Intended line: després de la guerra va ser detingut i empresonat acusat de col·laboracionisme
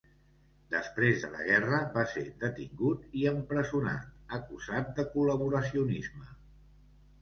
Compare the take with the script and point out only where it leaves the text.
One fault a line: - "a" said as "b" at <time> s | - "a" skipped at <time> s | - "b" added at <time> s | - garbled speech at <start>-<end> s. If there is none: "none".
none